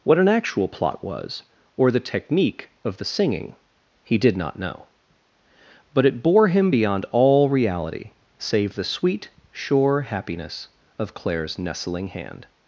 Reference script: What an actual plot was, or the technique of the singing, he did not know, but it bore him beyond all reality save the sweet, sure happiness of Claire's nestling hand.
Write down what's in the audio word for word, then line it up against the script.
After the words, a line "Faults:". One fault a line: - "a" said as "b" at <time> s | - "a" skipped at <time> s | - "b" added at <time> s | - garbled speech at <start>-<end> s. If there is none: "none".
What an actual plot was, or the technique of the singing, he did not know, but it bore him beyond all reality save the sweet, sure happiness of Claire's nestling hand.
Faults:
none